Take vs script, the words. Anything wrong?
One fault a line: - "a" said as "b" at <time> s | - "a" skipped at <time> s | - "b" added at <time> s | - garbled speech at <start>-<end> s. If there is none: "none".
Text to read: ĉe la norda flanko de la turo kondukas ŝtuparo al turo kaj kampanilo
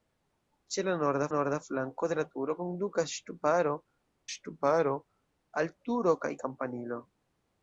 - "norda" added at 1.3 s
- "ŝtuparo" added at 4.3 s